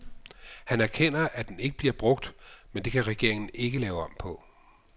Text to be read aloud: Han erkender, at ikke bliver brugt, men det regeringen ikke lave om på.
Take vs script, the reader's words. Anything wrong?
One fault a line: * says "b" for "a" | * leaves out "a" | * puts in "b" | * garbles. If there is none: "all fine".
* puts in "den"
* puts in "kan"